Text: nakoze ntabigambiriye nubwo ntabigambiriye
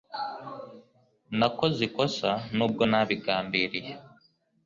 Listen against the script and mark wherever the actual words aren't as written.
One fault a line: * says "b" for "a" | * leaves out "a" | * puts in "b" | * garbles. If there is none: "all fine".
* says "ikosa" for "ntabigambiriye"